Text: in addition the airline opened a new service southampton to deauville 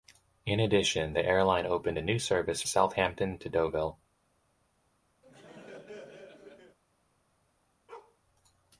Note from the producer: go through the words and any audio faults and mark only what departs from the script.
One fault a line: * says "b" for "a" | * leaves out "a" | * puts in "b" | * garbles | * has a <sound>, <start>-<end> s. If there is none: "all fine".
* has a laugh, 5.2-6.8 s
* has a bark, 7.9-8.2 s